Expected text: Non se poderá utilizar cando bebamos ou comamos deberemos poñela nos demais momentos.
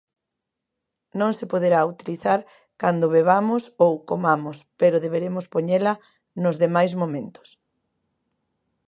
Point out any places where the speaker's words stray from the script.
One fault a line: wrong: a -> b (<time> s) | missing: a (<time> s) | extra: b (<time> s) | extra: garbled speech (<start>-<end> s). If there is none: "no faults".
extra: pero (4.8 s)